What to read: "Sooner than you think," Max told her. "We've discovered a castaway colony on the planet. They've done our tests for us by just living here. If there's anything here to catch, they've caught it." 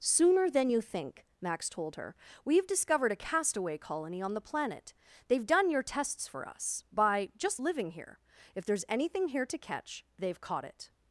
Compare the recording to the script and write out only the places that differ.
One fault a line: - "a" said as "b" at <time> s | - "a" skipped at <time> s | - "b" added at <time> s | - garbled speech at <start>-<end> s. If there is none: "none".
- "our" said as "your" at 5.7 s